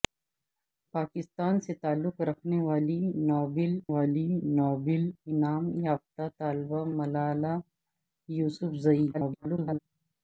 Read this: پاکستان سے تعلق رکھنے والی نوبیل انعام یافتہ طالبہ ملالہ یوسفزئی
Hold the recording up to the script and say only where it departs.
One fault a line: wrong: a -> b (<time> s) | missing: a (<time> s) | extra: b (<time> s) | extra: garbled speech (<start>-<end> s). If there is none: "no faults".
extra: والی نوبیل (3.9 s)
extra: garbled speech (9.1-9.8 s)